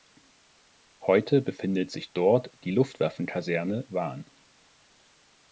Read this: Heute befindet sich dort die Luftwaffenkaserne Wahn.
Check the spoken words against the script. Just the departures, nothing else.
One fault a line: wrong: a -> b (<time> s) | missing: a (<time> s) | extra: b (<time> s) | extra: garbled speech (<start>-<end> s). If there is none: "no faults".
no faults